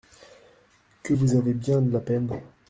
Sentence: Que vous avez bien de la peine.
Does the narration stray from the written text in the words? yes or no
no